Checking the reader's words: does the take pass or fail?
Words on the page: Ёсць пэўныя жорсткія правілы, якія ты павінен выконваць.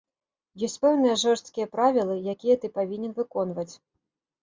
pass